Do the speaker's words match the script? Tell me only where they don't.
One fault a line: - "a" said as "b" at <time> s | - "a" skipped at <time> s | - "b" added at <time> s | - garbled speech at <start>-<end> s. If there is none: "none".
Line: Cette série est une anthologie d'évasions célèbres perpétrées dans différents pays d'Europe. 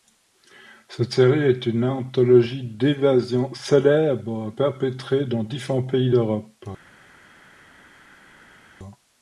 none